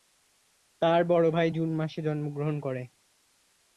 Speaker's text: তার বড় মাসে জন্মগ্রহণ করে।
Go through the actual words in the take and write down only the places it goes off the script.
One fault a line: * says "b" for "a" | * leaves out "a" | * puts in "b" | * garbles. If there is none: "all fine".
* puts in "ভাই জুন"